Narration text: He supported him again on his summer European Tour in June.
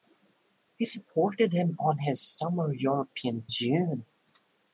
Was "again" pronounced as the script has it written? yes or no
no